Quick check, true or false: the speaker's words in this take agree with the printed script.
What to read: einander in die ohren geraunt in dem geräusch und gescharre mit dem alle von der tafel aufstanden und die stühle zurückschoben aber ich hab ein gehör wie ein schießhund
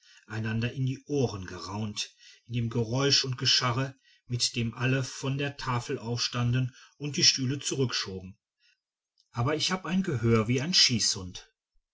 true